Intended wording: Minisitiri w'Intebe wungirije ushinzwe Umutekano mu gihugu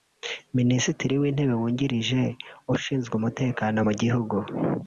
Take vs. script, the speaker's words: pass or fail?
pass